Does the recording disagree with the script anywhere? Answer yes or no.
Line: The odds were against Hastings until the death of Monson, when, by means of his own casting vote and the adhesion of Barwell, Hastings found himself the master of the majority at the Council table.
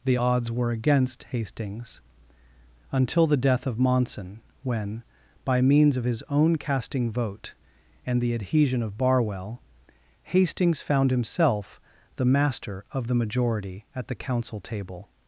no